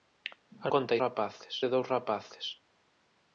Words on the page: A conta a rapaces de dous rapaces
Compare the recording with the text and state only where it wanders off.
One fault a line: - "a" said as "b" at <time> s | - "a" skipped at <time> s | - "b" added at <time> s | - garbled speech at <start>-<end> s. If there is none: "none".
none